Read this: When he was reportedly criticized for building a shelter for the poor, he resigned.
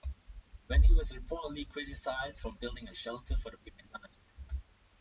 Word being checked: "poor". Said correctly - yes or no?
no